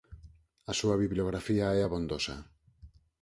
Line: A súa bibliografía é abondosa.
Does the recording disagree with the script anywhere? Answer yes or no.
no